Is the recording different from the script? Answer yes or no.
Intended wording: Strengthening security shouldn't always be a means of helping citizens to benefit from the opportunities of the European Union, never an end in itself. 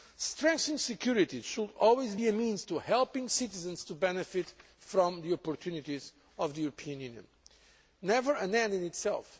yes